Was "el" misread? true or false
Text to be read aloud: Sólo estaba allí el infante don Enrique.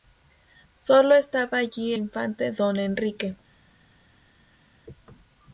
true